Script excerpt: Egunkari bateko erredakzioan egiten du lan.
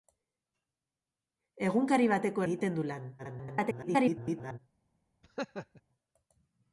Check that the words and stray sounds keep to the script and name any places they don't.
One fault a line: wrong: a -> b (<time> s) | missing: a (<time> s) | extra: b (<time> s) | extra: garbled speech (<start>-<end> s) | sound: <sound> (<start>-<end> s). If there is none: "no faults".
missing: erredakzioan (2.5 s)
extra: garbled speech (3.2-4.6 s)
sound: laugh (5.2-5.8 s)